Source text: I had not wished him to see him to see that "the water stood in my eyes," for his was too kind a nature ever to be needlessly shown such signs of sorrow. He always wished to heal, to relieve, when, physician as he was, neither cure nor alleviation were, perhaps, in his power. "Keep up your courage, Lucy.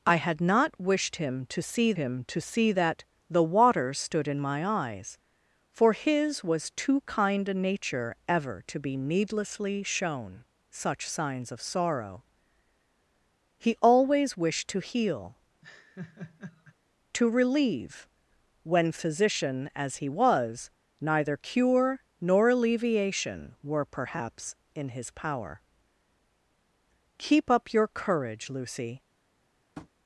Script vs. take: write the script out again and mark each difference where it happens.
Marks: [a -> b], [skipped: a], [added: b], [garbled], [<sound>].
I had not wished him to see him to see that "the water stood in my eyes," for his was too kind a nature ever to be needlessly shown such signs of sorrow. He always wished to heal, [laugh] to relieve, when, physician as he was, neither cure nor alleviation were, perhaps, in his power. "Keep up your courage, Lucy. [tap]